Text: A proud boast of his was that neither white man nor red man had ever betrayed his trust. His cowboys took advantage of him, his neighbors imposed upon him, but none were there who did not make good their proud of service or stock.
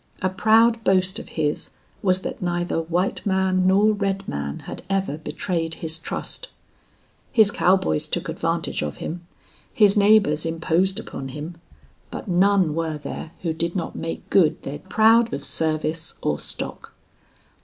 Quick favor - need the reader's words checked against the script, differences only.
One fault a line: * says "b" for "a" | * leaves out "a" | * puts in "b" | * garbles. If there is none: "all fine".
all fine